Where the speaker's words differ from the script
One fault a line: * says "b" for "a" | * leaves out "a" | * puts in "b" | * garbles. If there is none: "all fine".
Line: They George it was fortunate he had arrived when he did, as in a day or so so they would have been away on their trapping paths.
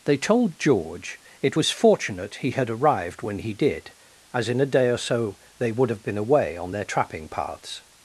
* puts in "told"
* leaves out "so"